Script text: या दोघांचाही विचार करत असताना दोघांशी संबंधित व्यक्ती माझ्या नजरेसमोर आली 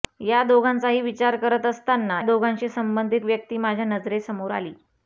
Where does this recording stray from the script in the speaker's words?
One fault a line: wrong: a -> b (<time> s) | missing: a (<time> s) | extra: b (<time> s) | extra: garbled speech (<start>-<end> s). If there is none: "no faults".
no faults